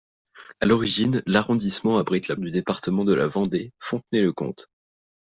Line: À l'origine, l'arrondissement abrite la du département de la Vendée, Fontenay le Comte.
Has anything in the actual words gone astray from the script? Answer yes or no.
no